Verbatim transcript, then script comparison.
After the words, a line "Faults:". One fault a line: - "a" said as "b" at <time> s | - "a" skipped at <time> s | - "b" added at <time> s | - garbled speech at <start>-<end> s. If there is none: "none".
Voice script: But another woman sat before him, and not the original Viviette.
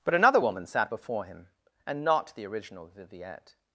But another woman sat before him, and not the original Viviette.
Faults:
none